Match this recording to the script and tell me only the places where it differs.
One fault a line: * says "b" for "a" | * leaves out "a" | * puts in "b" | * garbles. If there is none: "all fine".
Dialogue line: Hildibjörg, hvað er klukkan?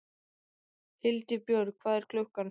all fine